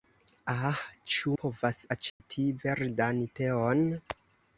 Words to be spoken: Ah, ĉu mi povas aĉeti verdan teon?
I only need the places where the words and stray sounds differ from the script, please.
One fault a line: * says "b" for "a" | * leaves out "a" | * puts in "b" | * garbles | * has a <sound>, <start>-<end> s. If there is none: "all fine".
* leaves out "mi"
* has a dropout, 2.1-2.2 s